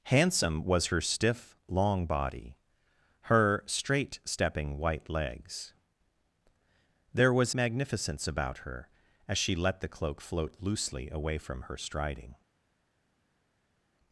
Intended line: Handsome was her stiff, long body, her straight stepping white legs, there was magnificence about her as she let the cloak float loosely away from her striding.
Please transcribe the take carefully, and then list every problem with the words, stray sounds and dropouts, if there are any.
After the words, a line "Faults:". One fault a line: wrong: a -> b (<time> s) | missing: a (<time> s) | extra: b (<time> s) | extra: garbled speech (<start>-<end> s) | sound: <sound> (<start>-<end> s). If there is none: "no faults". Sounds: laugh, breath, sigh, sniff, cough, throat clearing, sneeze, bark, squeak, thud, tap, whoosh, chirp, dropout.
Handsome was her stiff, long body, her straight stepping white legs, there was magnificence about her as she let the cloak float loosely away from her striding.
Faults:
no faults